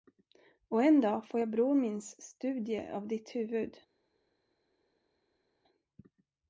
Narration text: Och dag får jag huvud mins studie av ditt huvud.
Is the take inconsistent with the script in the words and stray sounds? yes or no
yes